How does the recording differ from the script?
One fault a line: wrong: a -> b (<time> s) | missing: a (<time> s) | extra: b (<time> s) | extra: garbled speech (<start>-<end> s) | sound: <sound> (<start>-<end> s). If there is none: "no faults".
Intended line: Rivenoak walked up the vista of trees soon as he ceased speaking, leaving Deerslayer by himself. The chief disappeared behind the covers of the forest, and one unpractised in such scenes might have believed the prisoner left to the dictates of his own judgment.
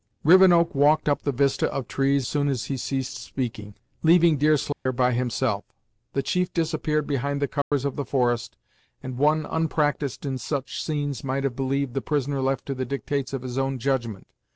sound: dropout (4.7-4.9 s)
sound: dropout (7.6-7.7 s)